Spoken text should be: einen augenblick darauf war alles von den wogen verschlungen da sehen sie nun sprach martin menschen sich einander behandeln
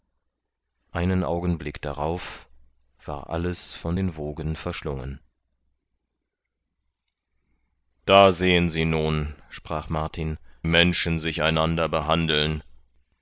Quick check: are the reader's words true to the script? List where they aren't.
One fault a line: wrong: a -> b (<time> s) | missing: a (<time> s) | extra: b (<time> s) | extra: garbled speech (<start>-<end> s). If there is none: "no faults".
no faults